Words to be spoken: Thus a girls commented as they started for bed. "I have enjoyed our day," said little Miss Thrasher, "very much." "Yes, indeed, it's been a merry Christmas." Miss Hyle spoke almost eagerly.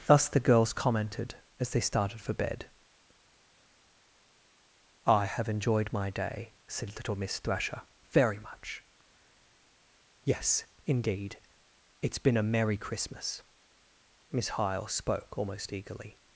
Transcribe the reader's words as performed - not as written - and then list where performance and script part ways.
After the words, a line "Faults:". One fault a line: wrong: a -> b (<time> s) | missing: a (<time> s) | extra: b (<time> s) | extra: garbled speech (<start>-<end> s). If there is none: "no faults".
Thus the girls commented as they started for bed. "I have enjoyed my day," said little Miss Thrasher, "very much." "Yes, indeed, it's been a merry Christmas." Miss Hyle spoke almost eagerly.
Faults:
wrong: a -> the (0.3 s)
wrong: our -> my (5.9 s)